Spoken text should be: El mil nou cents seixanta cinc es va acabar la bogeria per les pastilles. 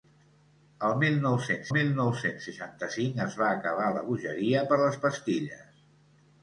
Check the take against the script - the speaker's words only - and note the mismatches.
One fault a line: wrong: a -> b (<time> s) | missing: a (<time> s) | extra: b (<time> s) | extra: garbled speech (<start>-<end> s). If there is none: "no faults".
extra: mil nou cents (1.8 s)